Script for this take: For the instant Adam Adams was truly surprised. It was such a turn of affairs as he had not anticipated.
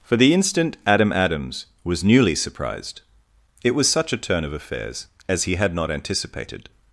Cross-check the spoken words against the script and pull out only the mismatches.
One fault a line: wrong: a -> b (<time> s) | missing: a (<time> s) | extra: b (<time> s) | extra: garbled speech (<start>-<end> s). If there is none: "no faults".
wrong: truly -> newly (2.0 s)